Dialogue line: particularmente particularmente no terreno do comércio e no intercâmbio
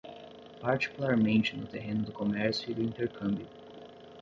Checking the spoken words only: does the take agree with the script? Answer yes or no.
no